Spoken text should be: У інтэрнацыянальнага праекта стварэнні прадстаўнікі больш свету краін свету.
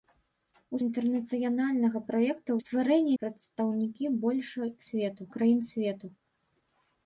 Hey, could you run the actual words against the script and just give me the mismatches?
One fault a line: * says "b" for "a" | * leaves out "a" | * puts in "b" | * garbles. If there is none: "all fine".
all fine